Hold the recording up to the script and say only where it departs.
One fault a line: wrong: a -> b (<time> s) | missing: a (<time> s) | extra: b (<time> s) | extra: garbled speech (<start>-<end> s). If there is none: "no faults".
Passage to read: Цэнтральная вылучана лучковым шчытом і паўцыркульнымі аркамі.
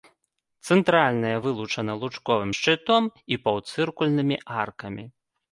no faults